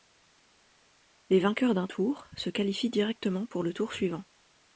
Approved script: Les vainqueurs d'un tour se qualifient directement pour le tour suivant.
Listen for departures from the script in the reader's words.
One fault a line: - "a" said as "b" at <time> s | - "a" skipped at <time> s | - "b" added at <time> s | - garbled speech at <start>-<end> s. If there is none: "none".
none